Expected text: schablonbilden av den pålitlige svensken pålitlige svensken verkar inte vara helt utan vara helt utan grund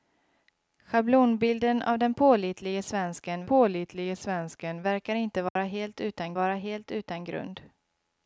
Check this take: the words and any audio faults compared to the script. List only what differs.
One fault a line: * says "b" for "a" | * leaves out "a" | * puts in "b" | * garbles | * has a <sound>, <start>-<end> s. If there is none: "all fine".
* has a dropout, 5.5-5.6 s